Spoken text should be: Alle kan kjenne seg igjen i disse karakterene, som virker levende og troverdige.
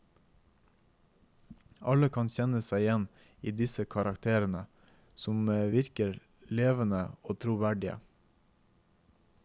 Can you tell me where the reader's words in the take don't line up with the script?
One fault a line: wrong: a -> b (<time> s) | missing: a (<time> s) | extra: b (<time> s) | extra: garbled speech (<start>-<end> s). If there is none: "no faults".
no faults